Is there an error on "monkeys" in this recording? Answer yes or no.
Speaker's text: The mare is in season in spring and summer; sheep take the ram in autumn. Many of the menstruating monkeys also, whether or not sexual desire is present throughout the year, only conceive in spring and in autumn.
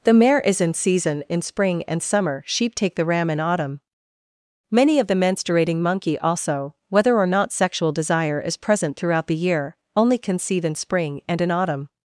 yes